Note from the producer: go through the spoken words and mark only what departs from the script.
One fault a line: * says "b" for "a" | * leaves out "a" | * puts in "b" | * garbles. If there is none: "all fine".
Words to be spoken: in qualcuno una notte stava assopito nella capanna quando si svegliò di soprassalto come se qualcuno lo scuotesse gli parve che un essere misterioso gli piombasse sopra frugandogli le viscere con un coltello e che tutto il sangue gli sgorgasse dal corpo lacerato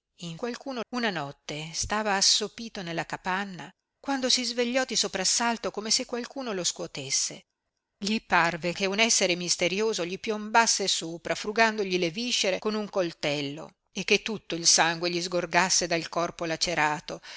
all fine